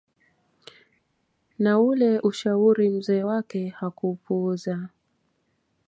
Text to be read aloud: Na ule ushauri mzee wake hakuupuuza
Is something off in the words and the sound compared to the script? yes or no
no